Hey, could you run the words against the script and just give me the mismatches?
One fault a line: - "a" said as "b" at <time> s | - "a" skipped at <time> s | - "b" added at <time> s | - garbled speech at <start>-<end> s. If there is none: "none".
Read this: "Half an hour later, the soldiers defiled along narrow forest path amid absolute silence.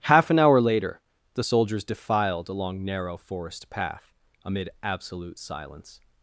none